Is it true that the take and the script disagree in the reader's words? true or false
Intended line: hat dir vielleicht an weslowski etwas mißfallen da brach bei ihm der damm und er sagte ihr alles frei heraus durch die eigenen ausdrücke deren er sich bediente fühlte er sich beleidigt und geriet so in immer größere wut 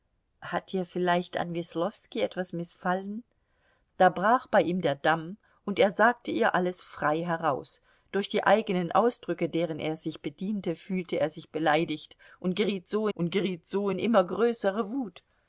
true